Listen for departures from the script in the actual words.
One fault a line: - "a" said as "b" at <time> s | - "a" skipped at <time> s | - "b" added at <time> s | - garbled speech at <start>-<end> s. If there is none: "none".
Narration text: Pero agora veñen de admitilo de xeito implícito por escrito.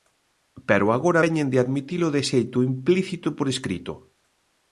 none